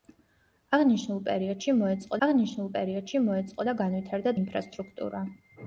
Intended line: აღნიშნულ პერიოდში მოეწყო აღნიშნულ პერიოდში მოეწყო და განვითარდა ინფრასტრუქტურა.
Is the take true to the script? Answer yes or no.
yes